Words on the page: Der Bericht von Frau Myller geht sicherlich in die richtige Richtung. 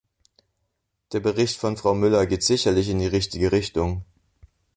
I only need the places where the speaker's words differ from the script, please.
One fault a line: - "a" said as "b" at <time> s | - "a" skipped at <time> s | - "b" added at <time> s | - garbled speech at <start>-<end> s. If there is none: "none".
none